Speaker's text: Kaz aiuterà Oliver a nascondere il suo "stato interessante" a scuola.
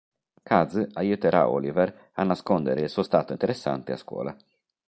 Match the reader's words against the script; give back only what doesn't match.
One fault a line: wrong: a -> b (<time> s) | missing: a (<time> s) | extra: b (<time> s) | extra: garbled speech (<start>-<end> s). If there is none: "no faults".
no faults